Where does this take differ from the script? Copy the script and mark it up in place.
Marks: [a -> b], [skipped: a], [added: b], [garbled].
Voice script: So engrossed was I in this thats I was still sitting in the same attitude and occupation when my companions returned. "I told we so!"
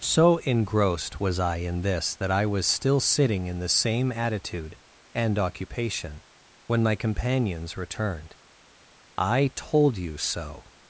So engrossed was I in this [thats -> that] I was still sitting in the same attitude and occupation when my companions returned. "I told [we -> you] so!"